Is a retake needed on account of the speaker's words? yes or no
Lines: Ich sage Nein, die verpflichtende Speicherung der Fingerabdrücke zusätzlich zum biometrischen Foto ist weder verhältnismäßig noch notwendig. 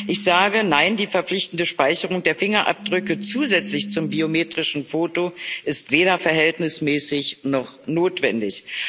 no